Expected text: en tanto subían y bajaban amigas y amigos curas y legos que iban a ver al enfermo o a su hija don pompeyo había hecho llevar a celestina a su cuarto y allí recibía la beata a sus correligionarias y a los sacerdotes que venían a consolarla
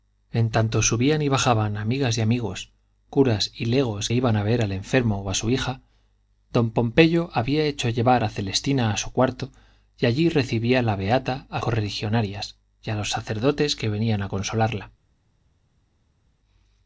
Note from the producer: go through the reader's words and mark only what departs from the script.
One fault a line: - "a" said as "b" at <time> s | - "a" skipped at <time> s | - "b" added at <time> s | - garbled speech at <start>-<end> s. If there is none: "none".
- "que" skipped at 4.1 s
- "sus" skipped at 11.6 s